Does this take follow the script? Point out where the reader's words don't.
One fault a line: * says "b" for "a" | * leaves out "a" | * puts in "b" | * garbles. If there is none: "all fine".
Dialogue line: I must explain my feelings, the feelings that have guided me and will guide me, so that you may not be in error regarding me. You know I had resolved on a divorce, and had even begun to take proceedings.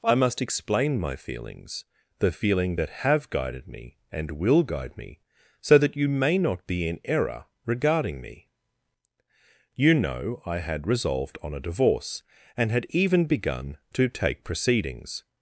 * says "feeling" for "feelings"